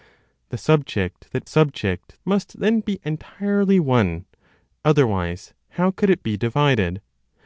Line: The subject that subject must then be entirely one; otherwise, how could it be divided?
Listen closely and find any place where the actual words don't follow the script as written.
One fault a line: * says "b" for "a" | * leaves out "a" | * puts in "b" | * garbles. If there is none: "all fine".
all fine